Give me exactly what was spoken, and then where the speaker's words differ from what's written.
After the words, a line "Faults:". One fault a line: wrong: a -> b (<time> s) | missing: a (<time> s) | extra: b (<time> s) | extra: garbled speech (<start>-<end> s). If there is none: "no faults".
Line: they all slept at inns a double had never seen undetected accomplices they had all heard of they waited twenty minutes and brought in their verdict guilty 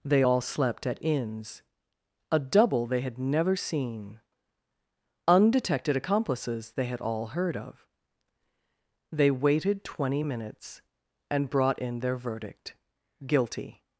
they all slept at inns a double they had never seen undetected accomplices they had all heard of they waited twenty minutes and brought in their verdict guilty
Faults:
extra: they (2.9 s)